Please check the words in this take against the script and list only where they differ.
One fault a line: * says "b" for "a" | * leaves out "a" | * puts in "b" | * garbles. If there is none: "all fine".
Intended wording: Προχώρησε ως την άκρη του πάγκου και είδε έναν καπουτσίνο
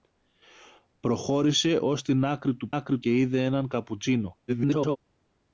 * says "άκρη" for "πάγκου"
* garbles